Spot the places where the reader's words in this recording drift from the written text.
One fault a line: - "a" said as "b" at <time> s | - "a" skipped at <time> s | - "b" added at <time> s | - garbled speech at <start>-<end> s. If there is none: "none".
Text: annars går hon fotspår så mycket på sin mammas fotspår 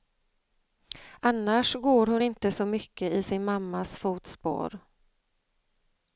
- "fotspår" said as "inte" at 2.2 s
- "på" said as "i" at 3.1 s